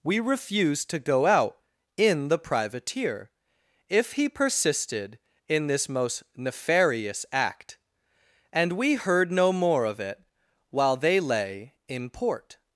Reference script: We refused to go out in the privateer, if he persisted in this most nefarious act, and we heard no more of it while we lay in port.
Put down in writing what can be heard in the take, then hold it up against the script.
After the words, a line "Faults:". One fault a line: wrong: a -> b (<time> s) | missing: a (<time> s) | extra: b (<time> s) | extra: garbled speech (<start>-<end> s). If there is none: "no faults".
We refused to go out in the privateer, if he persisted in this most nefarious act, and we heard no more of it while they lay in port.
Faults:
wrong: we -> they (10.9 s)